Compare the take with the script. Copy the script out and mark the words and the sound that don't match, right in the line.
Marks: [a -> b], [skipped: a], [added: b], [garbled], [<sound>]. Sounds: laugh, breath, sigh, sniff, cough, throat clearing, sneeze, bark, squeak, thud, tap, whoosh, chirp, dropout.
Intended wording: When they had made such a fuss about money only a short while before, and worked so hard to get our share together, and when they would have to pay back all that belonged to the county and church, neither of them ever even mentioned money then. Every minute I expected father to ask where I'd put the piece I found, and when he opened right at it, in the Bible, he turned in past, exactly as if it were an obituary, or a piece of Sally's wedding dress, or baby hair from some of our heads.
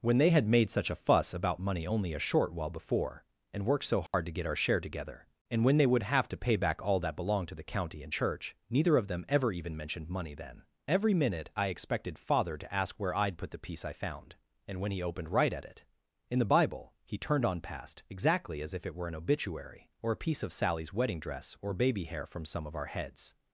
When they had made such a fuss about money only a short while before, and worked so hard [dropout] to get our share together, and when they would have to pay back all that belonged to the county and church, neither of them ever even mentioned money then. Every minute I expected father to ask where I'd put the piece I found, and when he opened right at it, in the Bible, he turned [in -> on] past, exactly as if it were an obituary, or a piece of Sally's wedding dress, or baby hair from some of our heads.